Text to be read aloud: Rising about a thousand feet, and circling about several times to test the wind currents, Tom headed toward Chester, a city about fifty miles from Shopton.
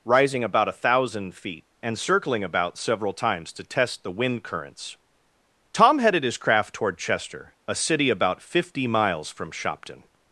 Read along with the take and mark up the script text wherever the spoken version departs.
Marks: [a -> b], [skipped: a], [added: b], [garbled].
Rising about a thousand feet, and circling about several times to test the wind currents, Tom headed [added: his craft] toward Chester, a city about fifty miles from Shopton.